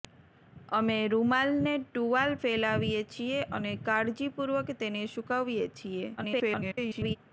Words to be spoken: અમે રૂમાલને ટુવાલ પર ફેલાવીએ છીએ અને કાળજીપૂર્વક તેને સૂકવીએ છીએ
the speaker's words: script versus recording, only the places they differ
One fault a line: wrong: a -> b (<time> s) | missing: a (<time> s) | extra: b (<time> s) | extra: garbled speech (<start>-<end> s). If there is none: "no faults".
missing: પર (2.3 s)
extra: garbled speech (6.2-7.2 s)